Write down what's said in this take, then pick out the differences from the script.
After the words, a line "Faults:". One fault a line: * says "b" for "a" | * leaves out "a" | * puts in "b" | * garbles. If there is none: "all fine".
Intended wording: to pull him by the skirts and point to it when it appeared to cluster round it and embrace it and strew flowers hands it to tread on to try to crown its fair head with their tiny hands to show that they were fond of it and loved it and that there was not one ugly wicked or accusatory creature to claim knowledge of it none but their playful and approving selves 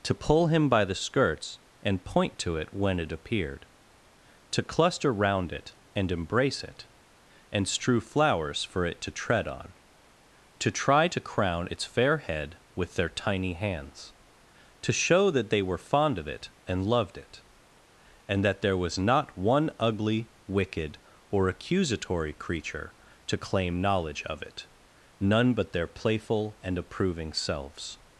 to pull him by the skirts and point to it when it appeared to cluster round it and embrace it and strew flowers for it to tread on to try to crown its fair head with their tiny hands to show that they were fond of it and loved it and that there was not one ugly wicked or accusatory creature to claim knowledge of it none but their playful and approving selves
Faults:
* says "for" for "hands"